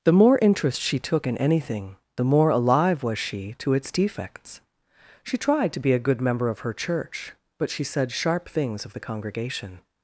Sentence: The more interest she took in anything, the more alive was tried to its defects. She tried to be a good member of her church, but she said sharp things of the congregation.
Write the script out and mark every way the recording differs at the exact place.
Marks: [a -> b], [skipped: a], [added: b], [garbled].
The more interest she took in anything, the more alive was [tried -> she] to its defects. She tried to be a good member of her church, but she said sharp things of the congregation.